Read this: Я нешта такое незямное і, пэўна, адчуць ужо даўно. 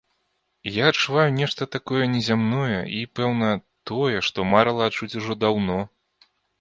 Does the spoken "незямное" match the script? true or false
true